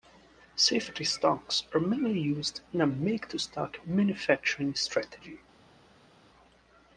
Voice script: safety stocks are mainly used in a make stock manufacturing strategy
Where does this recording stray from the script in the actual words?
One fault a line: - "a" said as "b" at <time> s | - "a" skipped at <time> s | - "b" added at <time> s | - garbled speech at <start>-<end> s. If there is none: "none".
- "to" added at 3.3 s